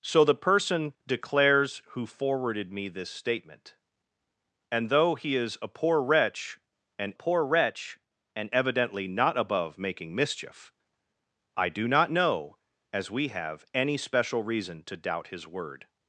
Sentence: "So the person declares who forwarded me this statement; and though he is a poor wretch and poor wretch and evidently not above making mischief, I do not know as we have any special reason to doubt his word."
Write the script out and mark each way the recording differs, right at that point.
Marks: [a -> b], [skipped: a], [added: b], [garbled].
"So the person declares who forwarded me this statement; and though he is a poor wretch and poor wretch and evidently not above making mischief, I do not know as we have any special reason to doubt his word."